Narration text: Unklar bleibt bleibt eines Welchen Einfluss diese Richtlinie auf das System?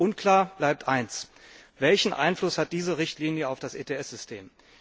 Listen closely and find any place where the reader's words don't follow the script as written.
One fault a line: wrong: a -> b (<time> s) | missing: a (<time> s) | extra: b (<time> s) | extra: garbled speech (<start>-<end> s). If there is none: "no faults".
missing: bleibt (0.9 s)
extra: hat (2.6 s)
extra: ETS (3.8 s)